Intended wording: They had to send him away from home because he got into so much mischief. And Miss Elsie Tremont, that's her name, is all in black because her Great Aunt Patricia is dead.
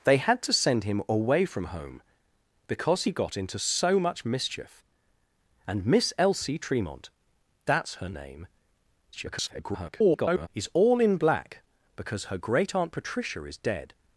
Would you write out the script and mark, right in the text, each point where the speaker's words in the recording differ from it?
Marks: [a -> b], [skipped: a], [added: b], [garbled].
They had to send him away from home because he got into so much mischief. And Miss Elsie Tremont, that's her name, [garbled] is all in black because her Great Aunt Patricia is dead.